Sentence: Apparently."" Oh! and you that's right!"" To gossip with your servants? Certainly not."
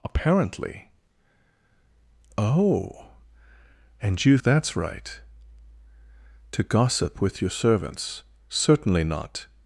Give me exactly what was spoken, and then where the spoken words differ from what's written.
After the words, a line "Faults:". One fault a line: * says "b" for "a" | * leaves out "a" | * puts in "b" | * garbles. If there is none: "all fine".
Apparently."" Oh! and you that's right!"" To gossip with your servants? Certainly not."
Faults:
all fine